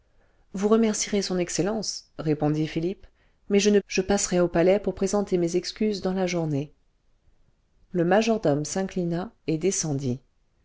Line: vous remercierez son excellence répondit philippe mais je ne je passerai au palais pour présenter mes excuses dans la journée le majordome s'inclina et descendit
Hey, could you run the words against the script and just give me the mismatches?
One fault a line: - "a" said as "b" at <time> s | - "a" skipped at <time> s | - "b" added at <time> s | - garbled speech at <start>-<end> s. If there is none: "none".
none